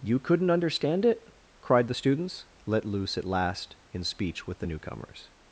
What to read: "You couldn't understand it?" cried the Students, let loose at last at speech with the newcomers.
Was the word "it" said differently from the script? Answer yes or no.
no